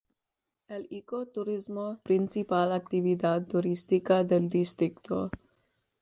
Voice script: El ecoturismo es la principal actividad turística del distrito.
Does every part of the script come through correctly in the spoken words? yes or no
no